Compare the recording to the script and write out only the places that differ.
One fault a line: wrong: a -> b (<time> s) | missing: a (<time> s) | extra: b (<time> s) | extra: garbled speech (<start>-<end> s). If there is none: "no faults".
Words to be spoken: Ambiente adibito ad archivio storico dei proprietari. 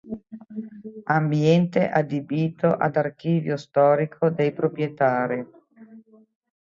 no faults